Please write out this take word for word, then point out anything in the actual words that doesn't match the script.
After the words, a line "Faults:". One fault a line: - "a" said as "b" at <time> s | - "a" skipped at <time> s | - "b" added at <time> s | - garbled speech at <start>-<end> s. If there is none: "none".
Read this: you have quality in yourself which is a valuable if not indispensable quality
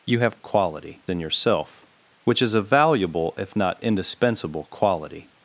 you have quality in yourself which is a valuable if not indispensable quality
Faults:
none